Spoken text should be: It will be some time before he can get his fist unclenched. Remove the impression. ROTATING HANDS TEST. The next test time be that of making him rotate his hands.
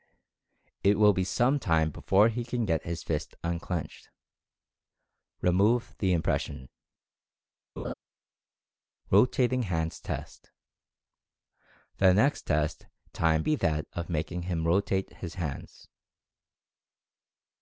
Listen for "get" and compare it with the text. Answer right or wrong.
right